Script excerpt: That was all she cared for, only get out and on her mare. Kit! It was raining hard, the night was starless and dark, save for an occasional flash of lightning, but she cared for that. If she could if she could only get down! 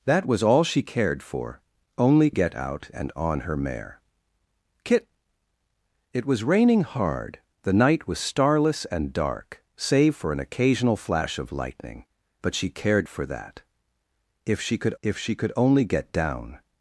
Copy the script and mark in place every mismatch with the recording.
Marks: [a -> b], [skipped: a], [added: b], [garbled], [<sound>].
That was all she cared for, only get out and on her mare. Kit! It was raining hard, the night was starless and dark, save for an occasional flash of lightning, but she cared for that. If she could if she could only get down!